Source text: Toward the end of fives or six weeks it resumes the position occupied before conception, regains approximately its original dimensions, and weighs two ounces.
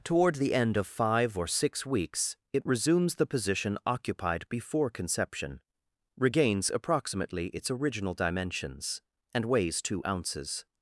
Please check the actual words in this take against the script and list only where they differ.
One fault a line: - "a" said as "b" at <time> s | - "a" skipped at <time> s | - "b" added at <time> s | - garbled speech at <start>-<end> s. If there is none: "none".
- "fives" said as "five" at 0.9 s